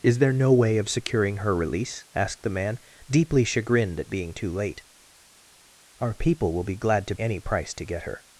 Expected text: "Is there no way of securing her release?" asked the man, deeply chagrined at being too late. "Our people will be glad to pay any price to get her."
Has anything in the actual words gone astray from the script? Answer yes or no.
yes